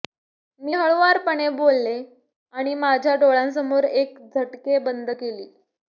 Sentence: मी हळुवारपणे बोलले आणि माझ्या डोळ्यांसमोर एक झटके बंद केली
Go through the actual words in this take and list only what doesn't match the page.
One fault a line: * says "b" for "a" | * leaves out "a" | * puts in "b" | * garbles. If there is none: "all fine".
all fine